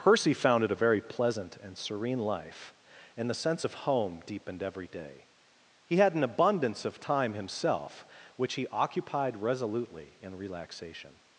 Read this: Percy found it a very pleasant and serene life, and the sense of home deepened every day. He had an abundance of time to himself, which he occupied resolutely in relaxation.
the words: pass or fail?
fail